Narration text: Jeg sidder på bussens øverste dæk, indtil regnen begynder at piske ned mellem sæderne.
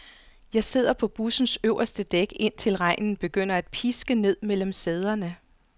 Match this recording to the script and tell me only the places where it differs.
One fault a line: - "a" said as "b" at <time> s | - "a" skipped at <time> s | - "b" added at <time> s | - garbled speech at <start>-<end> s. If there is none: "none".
none